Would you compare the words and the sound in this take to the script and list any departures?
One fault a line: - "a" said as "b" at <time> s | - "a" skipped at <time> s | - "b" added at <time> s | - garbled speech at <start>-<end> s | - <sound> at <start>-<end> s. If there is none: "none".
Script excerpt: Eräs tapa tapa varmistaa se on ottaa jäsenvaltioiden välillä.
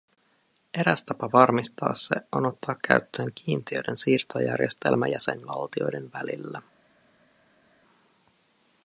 - "tapa" skipped at 1.3 s
- "käyttöön kiintiöiden siirtojärjestelmä" added at 2.9 s